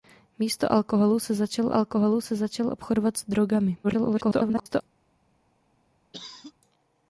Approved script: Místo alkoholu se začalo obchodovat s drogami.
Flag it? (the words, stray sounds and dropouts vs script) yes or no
yes